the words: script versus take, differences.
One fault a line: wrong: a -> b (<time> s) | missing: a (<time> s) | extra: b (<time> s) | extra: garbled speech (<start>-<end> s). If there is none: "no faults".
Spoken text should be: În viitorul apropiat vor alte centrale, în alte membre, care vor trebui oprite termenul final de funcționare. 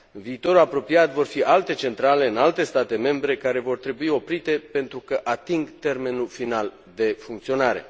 extra: fi (1.2 s)
extra: state (2.6 s)
extra: pentru că ating (4.7 s)